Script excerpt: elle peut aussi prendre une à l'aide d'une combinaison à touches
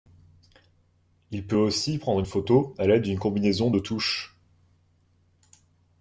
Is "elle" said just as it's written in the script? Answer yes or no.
no